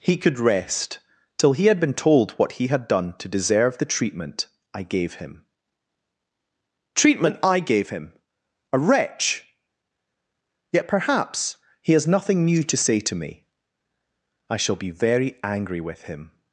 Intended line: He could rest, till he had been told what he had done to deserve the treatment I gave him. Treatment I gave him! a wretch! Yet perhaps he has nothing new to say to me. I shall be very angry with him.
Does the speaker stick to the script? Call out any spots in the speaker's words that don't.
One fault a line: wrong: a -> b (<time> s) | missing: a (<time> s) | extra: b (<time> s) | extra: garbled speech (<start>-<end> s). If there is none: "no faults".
no faults